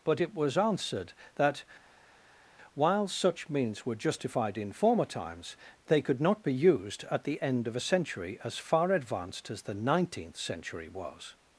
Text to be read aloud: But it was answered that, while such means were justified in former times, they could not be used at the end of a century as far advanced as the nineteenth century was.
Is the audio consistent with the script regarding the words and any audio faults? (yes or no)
yes